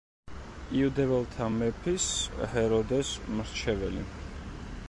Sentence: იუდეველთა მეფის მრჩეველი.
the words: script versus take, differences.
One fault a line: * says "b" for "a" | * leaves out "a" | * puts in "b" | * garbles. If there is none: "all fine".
* puts in "ჰეროდეს"